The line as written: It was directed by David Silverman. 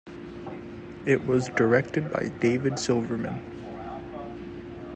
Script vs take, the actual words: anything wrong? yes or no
no